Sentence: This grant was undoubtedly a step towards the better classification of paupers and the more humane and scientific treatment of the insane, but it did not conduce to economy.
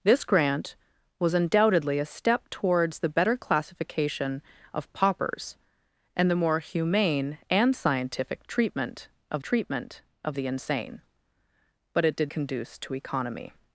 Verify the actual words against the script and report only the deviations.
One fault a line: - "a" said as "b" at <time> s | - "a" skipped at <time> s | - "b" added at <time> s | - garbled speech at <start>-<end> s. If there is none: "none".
- "treatment of" added at 9.4 s
- "not" skipped at 12.3 s